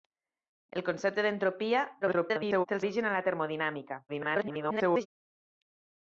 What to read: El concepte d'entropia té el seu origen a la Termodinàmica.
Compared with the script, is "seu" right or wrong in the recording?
wrong